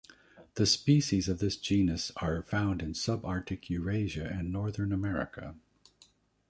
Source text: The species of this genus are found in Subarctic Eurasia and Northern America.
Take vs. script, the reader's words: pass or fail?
pass